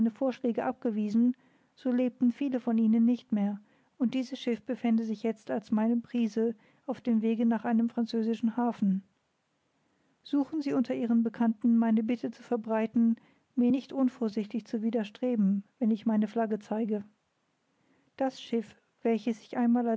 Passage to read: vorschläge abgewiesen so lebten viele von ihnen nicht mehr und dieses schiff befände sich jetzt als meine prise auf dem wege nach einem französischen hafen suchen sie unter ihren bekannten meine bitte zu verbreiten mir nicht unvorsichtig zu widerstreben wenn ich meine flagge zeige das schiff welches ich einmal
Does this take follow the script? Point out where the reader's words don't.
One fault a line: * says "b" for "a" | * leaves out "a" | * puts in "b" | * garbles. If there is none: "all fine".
all fine